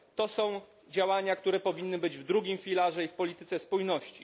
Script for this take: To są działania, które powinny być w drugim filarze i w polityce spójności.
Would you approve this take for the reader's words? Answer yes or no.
yes